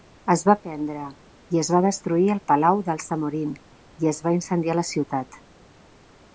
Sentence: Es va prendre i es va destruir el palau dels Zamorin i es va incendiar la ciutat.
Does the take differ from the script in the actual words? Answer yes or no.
no